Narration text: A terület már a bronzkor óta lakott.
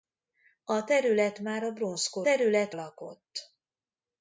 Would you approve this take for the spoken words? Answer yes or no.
no